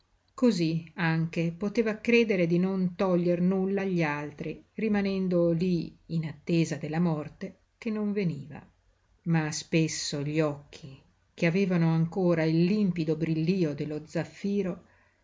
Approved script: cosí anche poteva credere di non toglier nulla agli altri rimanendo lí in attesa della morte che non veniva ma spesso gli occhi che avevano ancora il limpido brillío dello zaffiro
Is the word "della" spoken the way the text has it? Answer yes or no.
yes